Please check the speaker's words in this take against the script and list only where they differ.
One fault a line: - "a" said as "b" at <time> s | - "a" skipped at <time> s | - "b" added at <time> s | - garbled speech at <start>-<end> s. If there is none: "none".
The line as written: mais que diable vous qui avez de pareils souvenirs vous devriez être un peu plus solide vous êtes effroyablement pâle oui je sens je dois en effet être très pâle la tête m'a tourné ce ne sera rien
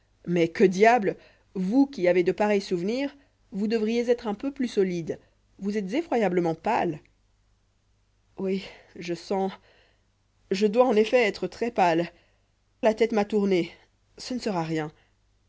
none